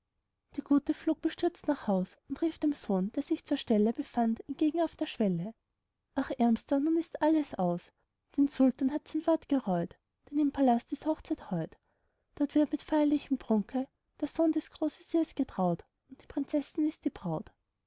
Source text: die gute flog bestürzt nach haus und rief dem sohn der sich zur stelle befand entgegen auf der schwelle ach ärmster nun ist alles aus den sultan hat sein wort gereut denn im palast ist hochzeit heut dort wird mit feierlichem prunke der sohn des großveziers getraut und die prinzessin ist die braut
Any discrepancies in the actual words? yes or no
no